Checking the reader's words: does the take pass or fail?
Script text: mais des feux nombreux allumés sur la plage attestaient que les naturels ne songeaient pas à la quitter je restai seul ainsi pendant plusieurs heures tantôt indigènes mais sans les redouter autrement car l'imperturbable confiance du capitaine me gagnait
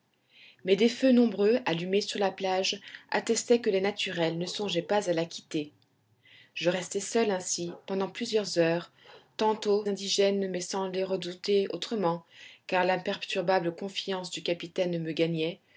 pass